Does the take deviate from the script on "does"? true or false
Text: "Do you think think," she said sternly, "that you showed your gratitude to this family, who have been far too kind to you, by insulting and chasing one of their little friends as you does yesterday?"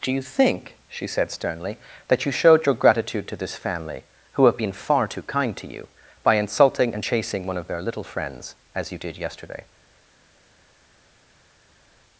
true